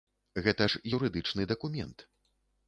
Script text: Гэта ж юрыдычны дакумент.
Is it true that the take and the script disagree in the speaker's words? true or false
false